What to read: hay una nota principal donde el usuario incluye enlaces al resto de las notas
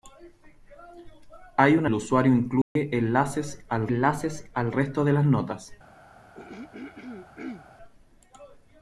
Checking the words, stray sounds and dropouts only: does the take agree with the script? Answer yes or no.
no